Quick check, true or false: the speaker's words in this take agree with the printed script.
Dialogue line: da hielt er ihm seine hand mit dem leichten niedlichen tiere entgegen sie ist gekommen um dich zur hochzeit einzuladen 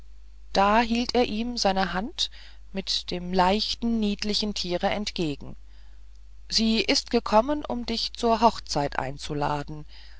true